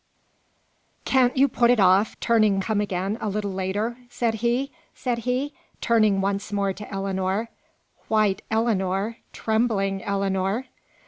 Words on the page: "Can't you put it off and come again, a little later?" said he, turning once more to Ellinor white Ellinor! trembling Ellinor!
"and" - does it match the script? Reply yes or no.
no